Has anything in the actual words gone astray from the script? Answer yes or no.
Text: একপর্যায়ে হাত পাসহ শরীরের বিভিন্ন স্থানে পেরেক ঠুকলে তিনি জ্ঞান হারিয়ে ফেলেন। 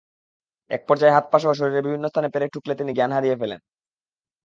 no